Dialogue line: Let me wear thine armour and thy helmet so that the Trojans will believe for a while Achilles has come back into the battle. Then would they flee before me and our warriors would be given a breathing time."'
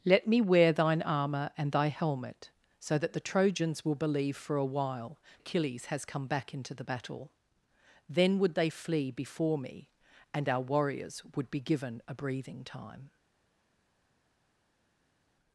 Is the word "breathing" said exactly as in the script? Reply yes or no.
yes